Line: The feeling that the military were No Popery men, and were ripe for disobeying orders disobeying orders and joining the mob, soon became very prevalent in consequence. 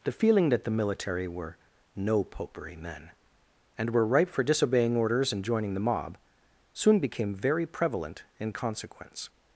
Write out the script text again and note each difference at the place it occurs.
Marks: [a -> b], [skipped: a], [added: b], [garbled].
The feeling that the military were No Popery men, and were ripe for disobeying orders [skipped: disobeying orders] and joining the mob, soon became very prevalent in consequence.